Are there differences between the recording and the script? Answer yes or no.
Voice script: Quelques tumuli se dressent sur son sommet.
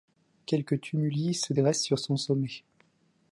no